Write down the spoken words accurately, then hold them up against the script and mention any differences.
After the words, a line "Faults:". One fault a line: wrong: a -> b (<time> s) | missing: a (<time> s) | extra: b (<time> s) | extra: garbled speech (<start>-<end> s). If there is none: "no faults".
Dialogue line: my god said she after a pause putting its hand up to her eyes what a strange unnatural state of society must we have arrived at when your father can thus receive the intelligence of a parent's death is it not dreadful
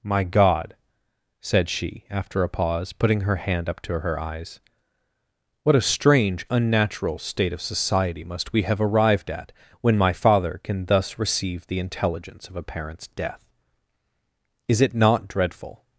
my god said she after a pause putting her hand up to her eyes what a strange unnatural state of society must we have arrived at when my father can thus receive the intelligence of a parent's death is it not dreadful
Faults:
wrong: its -> her (3.2 s)
wrong: your -> my (10.0 s)